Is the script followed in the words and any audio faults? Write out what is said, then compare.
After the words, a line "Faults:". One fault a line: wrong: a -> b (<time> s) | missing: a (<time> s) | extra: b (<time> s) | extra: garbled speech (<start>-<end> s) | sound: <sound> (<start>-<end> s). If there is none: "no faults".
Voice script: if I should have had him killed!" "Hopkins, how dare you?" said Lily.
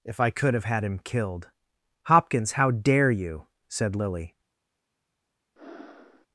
if I could have had him killed!" "Hopkins, how dare you?" said Lily.
Faults:
wrong: should -> could (0.3 s)
sound: breath (5.6-6.3 s)